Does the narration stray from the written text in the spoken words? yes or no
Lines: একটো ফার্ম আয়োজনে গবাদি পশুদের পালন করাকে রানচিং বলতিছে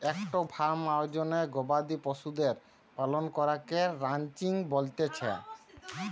no